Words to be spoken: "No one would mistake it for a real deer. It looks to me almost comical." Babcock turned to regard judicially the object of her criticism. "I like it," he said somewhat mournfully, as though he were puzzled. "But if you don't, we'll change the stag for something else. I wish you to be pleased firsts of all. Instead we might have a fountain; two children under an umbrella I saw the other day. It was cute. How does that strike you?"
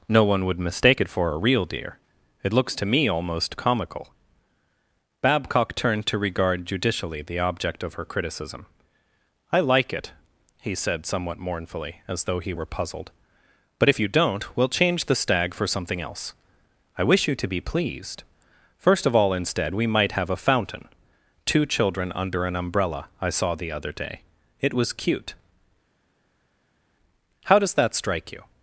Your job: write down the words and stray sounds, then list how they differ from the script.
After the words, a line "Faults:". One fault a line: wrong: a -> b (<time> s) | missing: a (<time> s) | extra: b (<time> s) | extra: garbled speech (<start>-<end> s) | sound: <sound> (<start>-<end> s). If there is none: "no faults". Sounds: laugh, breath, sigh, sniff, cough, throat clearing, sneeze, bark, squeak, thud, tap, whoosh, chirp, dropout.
"No one would mistake it for a real deer. It looks to me almost comical." Babcock turned to regard judicially the object of her criticism. "I like it," he said somewhat mournfully, as though he were puzzled. "But if you don't, we'll change the stag for something else. I wish you to be pleased first of all. Instead we might have a fountain; two children under an umbrella I saw the other day. It was cute. How does that strike you?"
Faults:
wrong: firsts -> first (18.8 s)